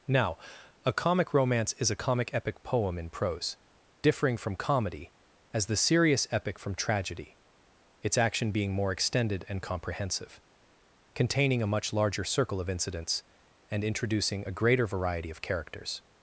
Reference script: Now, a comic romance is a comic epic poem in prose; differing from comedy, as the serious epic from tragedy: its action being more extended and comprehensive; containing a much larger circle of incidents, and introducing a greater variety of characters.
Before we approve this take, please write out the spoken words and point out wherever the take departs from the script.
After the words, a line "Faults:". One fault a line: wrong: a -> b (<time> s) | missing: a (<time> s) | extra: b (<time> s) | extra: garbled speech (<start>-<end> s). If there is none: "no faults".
Now, a comic romance is a comic epic poem in prose; differing from comedy, as the serious epic from tragedy: its action being more extended and comprehensive; containing a much larger circle of incidents, and introducing a greater variety of characters.
Faults:
no faults